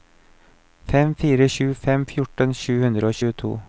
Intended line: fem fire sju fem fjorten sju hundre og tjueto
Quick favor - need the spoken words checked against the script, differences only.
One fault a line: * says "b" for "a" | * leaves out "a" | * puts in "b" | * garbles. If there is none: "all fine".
all fine